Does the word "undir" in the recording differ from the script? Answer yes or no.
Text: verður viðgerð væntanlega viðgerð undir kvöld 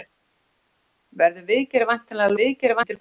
no